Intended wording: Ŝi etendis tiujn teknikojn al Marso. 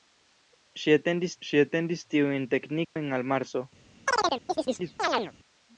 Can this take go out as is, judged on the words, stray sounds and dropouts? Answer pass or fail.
fail